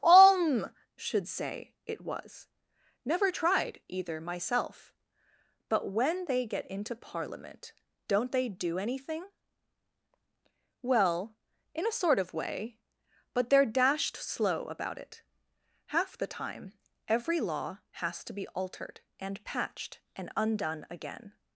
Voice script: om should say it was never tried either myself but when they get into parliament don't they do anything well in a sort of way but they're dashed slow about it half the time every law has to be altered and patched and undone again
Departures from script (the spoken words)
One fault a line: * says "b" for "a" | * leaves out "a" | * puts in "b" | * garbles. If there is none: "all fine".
all fine